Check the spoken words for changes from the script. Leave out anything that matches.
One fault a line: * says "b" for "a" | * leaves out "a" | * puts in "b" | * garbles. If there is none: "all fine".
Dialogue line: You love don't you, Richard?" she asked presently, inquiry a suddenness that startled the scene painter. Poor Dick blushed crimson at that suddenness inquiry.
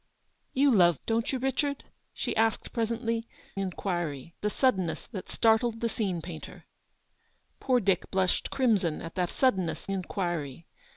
all fine